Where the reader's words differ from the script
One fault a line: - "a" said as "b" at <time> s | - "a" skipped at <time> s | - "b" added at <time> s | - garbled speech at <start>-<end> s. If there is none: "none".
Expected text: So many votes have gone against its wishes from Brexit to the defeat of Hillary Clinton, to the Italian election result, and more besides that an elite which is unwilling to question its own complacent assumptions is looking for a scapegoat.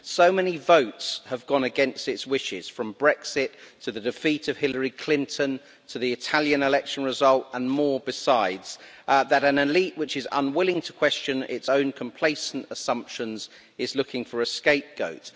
none